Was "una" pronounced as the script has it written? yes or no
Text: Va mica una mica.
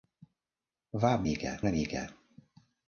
yes